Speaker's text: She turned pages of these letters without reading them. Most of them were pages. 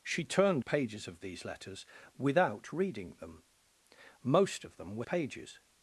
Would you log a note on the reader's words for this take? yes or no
no